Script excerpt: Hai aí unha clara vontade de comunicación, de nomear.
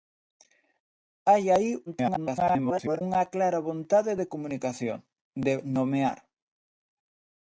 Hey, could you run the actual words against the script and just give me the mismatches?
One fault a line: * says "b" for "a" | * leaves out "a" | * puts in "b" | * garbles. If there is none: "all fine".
* garbles